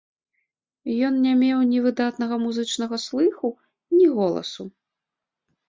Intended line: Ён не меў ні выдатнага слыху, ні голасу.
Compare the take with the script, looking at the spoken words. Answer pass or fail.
fail